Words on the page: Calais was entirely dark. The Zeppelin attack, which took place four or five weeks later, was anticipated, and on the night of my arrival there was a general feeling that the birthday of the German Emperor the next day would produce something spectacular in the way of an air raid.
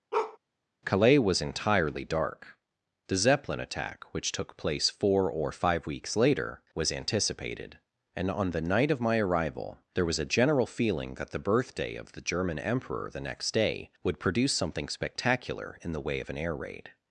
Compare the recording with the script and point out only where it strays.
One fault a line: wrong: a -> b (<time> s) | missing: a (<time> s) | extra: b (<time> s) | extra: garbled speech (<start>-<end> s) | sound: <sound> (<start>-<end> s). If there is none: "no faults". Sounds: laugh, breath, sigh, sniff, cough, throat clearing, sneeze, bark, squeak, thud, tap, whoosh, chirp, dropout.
sound: bark (0.1-0.4 s)